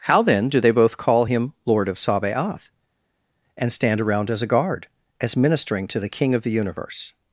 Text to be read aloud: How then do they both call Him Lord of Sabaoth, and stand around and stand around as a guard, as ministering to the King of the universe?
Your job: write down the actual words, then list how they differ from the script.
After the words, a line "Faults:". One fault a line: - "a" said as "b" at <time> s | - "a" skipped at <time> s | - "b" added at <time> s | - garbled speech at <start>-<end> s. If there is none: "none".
How then do they both call Him Lord of Sabaoth, and stand around as a guard, as ministering to the King of the universe?
Faults:
- "and stand around" skipped at 4.3 s